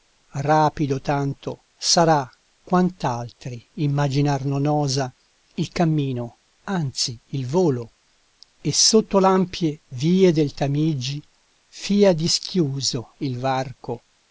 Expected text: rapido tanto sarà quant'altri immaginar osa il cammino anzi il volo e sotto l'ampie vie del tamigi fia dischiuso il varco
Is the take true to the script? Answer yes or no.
no